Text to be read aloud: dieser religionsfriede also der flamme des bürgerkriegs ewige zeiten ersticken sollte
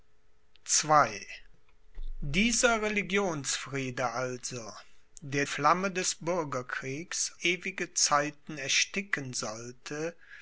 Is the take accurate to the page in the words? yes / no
yes